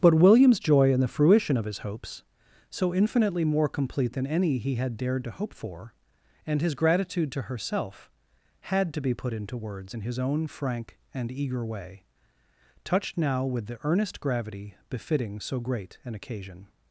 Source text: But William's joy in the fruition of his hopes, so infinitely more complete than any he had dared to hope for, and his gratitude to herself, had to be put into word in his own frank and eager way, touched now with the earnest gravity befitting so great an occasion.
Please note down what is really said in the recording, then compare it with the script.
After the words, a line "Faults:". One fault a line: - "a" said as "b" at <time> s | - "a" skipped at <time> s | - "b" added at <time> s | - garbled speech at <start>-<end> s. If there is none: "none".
But William's joy in the fruition of his hopes, so infinitely more complete than any he had dared to hope for, and his gratitude to herself, had to be put into words in his own frank and eager way, touched now with the earnest gravity befitting so great an occasion.
Faults:
- "word" said as "words" at 9.6 s